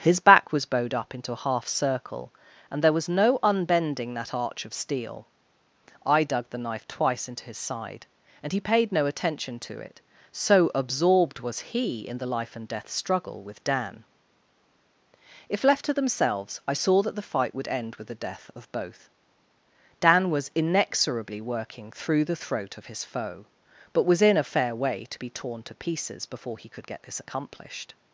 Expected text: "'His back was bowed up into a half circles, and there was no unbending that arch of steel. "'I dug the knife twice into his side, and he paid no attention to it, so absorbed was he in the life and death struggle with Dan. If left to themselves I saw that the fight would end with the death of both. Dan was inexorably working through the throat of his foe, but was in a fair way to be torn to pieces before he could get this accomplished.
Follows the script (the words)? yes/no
no